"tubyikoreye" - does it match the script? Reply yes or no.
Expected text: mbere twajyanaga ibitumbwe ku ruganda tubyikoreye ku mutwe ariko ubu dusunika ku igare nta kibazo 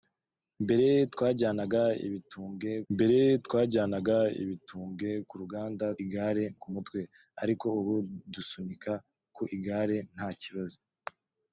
no